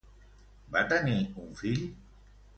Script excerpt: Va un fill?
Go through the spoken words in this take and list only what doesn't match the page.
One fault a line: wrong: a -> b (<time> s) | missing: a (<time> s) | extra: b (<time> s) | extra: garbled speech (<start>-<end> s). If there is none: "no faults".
extra: tenir (0.9 s)